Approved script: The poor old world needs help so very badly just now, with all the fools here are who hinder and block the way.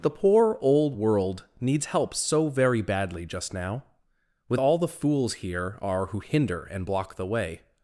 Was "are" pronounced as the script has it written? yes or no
yes